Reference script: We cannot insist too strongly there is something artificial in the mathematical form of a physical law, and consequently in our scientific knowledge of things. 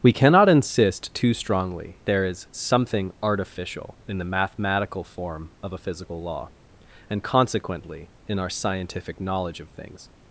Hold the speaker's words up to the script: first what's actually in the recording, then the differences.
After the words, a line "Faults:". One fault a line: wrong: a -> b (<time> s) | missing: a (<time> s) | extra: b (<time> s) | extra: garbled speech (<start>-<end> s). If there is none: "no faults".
We cannot insist too strongly there is something artificial in the mathematical form of a physical law, and consequently in our scientific knowledge of things.
Faults:
no faults